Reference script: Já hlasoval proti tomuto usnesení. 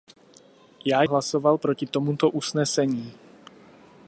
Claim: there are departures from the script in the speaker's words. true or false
false